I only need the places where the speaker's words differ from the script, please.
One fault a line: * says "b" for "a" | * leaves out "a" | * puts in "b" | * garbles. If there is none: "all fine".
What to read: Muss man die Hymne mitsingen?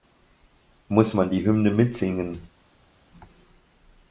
all fine